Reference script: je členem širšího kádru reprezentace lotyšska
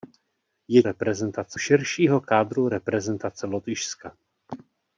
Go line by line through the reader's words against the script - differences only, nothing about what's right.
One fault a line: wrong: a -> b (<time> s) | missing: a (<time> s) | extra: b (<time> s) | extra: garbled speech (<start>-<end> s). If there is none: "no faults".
wrong: členem -> reprezentace (0.8 s)